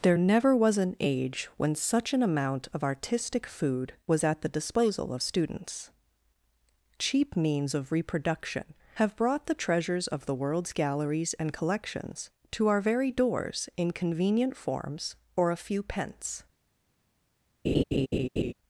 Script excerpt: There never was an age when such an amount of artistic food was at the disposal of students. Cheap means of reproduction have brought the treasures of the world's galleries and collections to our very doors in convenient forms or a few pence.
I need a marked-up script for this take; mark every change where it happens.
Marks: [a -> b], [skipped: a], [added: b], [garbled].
There never was an age when such an amount of artistic food was at the disposal of students. Cheap means of reproduction have brought the treasures of the world's galleries and collections to our very doors in convenient forms or a few pence.